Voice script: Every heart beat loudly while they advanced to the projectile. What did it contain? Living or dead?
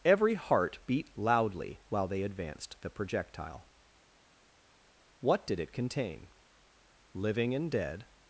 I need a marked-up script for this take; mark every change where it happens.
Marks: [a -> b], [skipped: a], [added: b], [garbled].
Every heart beat loudly while they advanced [skipped: to] the projectile. What did it contain? Living [or -> and] dead?